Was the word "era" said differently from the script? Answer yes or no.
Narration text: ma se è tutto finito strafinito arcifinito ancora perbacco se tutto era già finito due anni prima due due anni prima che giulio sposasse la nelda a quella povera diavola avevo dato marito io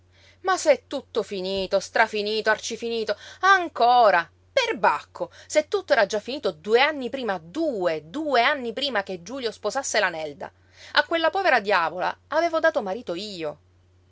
no